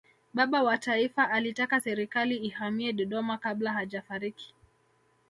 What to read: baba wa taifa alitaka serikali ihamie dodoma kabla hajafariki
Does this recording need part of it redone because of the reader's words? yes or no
no